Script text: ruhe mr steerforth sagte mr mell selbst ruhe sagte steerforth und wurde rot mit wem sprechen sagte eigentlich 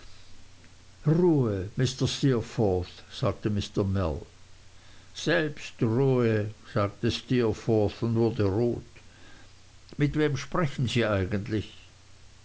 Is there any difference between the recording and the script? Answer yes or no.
yes